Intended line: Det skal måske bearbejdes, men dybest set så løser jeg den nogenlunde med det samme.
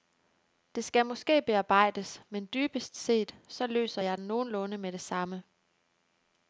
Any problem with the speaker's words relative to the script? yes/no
no